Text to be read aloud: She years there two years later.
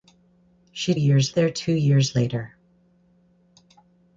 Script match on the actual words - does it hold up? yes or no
yes